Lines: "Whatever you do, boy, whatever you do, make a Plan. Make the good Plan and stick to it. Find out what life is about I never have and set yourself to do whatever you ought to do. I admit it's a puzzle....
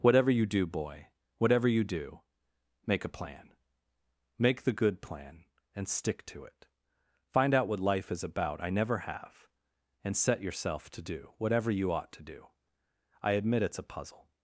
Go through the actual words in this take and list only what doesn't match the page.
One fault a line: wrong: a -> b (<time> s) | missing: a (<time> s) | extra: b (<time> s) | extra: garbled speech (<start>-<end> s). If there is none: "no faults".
no faults